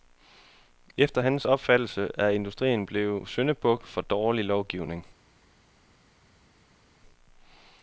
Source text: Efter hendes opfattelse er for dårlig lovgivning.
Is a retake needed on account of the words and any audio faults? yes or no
yes